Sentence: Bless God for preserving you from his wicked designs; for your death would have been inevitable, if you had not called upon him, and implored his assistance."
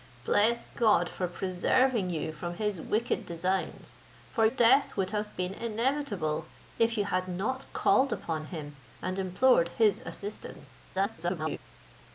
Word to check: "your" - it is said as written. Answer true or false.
false